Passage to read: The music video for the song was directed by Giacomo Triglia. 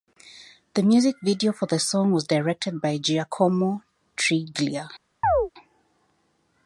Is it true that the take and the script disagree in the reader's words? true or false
false